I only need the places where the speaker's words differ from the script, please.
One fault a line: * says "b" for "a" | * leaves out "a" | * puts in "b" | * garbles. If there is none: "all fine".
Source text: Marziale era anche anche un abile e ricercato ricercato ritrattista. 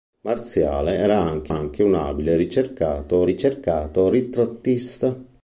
all fine